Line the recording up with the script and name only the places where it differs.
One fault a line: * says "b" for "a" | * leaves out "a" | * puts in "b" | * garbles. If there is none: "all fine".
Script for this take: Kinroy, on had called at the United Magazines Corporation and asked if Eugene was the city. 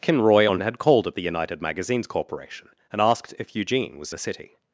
all fine